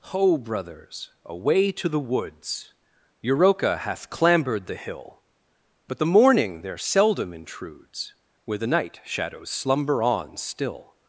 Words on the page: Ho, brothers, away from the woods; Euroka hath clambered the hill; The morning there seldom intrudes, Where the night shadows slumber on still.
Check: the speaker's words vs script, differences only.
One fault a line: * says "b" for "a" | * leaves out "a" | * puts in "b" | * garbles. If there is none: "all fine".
* says "to" for "from"
* puts in "But"